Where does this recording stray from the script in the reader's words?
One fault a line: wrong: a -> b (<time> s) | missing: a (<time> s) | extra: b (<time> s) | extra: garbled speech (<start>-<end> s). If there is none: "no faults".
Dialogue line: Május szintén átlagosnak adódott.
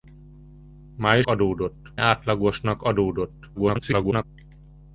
wrong: szintén -> adódott (1.2 s)
extra: garbled speech (3.5-4.2 s)